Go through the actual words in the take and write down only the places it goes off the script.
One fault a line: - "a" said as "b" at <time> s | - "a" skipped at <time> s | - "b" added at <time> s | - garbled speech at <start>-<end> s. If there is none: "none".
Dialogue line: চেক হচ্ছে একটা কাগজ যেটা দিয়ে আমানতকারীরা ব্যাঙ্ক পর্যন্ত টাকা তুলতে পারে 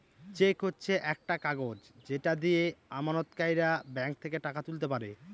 - "পর্যন্ত" said as "থেকে" at 4.2 s